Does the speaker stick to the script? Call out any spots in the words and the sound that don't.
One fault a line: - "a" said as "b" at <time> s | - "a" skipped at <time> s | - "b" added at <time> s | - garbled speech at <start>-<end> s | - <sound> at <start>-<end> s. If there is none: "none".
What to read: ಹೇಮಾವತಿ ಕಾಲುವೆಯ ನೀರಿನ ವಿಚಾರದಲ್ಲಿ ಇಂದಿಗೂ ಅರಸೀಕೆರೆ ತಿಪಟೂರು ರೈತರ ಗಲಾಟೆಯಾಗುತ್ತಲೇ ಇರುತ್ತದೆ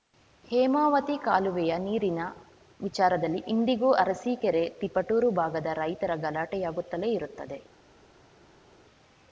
- "ಭಾಗದ" added at 5.3 s